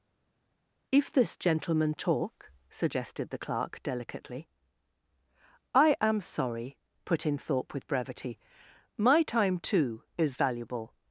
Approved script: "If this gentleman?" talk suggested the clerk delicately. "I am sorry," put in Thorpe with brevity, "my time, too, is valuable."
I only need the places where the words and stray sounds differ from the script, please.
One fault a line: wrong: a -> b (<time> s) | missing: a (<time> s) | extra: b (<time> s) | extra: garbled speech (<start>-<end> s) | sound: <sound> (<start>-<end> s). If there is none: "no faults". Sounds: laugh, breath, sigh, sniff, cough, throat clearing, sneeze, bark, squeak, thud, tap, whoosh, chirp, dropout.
no faults